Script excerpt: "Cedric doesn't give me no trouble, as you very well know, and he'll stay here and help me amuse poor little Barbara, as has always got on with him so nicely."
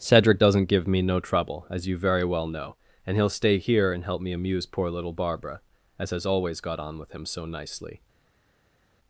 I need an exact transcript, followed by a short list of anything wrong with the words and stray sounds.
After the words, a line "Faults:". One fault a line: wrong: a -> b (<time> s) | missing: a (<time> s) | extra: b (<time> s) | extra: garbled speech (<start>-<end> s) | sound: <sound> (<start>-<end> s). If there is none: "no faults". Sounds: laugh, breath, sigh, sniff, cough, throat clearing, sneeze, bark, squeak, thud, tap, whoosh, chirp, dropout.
"Cedric doesn't give me no trouble, as you very well know, and he'll stay here and help me amuse poor little Barbara, as has always got on with him so nicely."
Faults:
no faults